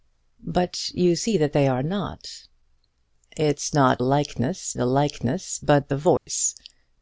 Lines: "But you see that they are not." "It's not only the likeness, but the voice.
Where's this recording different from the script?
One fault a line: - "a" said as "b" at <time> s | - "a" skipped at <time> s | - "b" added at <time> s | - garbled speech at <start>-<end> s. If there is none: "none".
- "only" said as "likeness" at 4.0 s